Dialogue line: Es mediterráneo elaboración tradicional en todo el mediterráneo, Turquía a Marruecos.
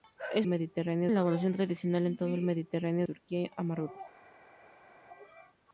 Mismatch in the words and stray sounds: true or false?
false